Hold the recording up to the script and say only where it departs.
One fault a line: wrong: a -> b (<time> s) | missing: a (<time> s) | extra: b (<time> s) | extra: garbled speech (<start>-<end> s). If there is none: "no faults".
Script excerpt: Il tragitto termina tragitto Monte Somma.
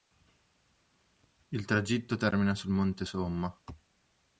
wrong: tragitto -> sul (2.5 s)